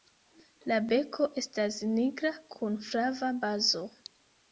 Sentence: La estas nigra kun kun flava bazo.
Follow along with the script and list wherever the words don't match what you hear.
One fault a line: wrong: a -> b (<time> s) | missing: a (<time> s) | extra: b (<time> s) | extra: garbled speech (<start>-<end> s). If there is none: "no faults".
extra: beko (0.9 s)
missing: kun (2.8 s)